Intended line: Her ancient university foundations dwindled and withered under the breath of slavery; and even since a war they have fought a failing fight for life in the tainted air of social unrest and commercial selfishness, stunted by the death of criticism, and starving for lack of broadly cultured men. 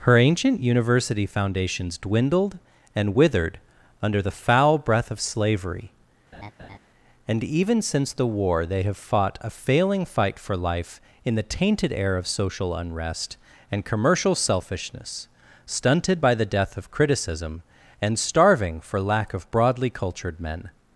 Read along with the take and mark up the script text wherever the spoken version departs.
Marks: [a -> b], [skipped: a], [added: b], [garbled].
Her ancient university foundations dwindled and withered under the [added: foul] breath of slavery; and even since [a -> the] war they have fought a failing fight for life in the tainted air of social unrest and commercial selfishness, stunted by the death of criticism, and starving for lack of broadly cultured men.